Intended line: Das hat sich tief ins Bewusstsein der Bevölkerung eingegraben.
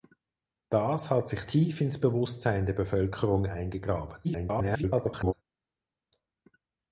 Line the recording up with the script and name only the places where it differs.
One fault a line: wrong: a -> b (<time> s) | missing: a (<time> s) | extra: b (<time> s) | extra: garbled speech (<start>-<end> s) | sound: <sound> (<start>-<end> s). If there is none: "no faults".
extra: garbled speech (4.2-5.3 s)